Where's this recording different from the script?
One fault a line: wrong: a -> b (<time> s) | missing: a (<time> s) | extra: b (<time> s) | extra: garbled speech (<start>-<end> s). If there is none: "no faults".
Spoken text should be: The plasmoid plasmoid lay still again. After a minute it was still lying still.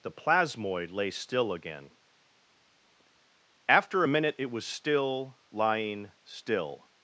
missing: plasmoid (0.9 s)